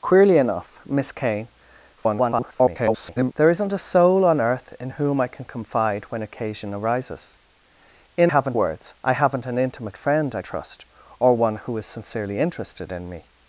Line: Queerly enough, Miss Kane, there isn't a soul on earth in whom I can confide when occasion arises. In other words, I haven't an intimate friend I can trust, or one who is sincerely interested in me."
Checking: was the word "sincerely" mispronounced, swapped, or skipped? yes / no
no